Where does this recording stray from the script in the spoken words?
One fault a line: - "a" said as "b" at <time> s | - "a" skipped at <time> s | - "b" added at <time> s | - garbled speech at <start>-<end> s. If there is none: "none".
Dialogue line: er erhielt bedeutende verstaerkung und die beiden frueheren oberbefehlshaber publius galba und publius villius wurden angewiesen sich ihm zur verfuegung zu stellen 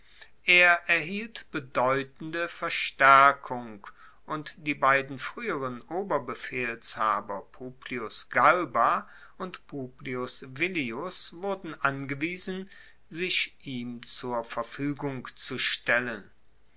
none